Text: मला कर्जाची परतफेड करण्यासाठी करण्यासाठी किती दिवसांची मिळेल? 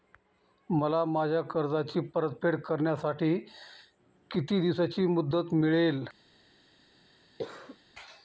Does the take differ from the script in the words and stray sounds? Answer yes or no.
yes